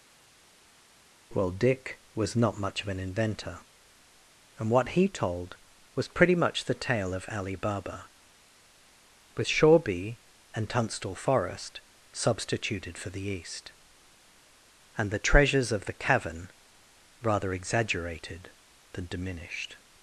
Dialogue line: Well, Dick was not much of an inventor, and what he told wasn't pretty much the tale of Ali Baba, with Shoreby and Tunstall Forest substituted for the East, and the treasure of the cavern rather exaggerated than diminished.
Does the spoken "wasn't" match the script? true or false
false